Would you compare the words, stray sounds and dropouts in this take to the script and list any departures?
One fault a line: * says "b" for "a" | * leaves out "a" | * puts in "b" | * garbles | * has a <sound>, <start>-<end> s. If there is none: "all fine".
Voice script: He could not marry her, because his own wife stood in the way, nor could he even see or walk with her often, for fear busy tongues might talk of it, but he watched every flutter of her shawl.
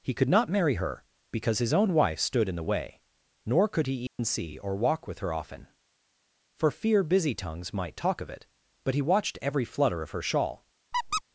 * has a dropout, 4.1-4.2 s
* has a squeak, 10.9-11.2 s